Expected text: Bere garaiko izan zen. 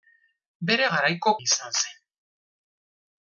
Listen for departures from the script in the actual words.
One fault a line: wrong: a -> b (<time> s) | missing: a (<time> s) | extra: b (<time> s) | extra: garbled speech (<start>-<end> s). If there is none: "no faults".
no faults